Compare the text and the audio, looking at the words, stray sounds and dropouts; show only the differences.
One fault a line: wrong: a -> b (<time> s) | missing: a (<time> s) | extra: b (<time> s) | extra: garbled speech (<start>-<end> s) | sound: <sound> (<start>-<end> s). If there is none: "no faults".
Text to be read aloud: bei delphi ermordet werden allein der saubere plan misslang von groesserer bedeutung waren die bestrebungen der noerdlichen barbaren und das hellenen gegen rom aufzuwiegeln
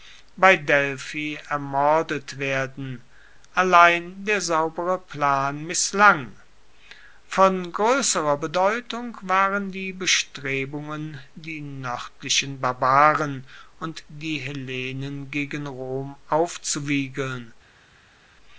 wrong: der -> die (11.4 s)
wrong: das -> die (14.1 s)